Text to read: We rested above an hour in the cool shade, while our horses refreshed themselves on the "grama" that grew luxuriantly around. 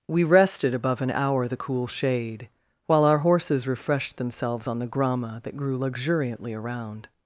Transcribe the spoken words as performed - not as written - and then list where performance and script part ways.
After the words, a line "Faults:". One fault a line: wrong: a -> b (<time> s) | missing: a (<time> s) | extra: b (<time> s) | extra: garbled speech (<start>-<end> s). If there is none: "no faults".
We rested above an hour the cool shade, while our horses refreshed themselves on the "grama" that grew luxuriantly around.
Faults:
missing: in (1.5 s)